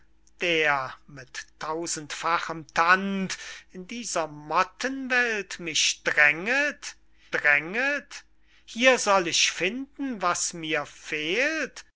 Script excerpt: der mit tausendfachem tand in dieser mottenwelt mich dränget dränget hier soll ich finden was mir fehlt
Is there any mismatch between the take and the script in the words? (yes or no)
no